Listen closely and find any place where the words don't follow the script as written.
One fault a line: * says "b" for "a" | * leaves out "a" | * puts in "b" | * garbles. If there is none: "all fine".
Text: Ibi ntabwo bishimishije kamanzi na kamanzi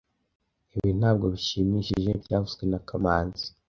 * says "byavuzwe" for "kamanzi"